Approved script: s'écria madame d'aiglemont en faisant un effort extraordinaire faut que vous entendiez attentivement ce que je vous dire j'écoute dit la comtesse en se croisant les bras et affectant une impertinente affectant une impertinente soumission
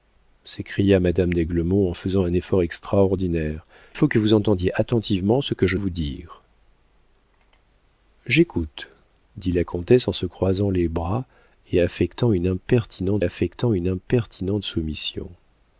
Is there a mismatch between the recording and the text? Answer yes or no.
no